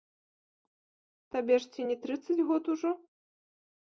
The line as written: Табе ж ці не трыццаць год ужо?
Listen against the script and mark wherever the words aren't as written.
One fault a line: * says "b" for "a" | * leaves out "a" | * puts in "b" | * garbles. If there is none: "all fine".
all fine